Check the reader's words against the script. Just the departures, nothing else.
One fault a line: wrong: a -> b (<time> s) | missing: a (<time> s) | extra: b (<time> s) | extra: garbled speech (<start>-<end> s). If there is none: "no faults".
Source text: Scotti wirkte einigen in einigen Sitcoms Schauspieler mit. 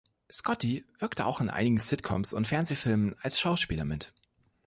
wrong: einigen -> auch (1.3 s)
extra: und Fernsehfilmen als (2.3 s)